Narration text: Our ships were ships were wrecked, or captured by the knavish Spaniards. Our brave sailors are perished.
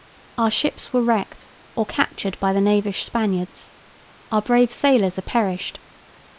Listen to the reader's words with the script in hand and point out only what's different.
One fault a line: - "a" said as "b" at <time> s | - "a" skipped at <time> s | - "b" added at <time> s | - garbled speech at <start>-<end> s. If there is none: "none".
- "ships were" skipped at 1.0 s